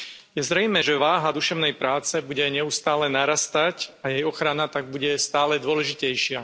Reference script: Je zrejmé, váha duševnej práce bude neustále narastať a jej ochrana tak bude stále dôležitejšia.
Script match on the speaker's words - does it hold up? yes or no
no